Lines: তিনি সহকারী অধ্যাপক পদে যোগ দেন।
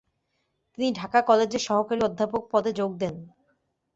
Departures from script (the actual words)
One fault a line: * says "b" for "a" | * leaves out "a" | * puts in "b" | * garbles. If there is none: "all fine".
* puts in "ঢাকা কলেজের"